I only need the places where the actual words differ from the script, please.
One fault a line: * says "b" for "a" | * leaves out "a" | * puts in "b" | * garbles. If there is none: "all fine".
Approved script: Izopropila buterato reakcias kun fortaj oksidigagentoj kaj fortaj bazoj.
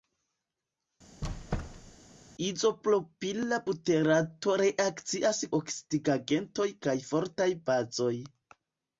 * leaves out "kun fortaj"